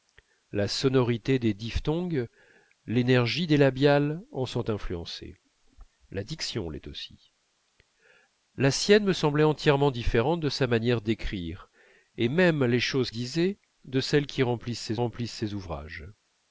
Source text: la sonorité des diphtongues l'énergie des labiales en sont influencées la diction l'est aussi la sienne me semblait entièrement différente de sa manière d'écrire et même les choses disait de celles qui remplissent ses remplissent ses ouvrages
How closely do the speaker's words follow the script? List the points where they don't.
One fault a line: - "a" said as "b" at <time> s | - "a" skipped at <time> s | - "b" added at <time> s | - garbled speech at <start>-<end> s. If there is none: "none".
none